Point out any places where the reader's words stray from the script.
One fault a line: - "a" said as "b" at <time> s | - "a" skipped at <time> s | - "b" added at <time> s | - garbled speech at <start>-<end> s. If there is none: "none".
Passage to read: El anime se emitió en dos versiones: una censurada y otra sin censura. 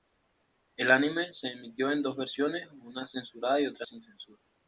none